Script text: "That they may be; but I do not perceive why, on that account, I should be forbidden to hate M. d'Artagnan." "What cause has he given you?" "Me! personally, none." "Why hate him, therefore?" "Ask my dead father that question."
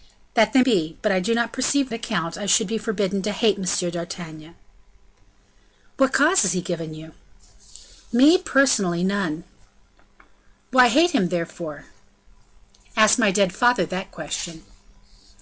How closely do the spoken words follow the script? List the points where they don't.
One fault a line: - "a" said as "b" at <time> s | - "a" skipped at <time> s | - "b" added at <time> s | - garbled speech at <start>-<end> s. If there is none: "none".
- "may" skipped at 0.6 s
- "why on that" skipped at 1.9 s